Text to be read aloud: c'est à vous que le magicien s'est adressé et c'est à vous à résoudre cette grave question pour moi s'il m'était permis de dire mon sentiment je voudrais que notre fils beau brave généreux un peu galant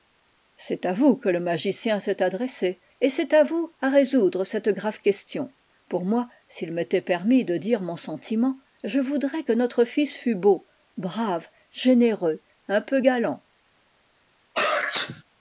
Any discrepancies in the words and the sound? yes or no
yes